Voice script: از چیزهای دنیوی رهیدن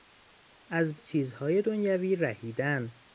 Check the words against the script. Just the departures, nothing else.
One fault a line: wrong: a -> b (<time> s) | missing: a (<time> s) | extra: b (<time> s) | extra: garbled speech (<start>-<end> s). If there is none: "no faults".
no faults